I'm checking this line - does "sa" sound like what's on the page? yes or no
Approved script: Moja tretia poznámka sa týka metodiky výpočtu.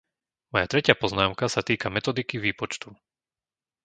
yes